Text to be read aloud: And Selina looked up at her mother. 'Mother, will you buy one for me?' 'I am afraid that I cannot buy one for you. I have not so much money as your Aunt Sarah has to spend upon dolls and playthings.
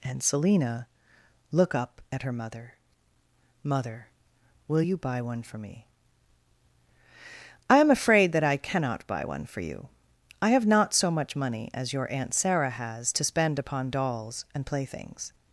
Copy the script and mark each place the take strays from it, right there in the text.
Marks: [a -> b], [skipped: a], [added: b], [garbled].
And Selina [looked -> look] up at her mother. 'Mother, will you buy one for me?' 'I am afraid that I cannot buy one for you. I have not so much money as your Aunt Sarah has to spend upon dolls and playthings.